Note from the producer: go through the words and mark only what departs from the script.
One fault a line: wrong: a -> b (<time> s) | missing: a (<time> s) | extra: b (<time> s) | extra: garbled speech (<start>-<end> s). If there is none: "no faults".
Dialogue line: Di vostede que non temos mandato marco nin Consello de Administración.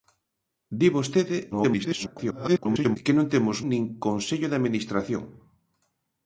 extra: garbled speech (1.5-3.0 s)
missing: mandato marco (3.6 s)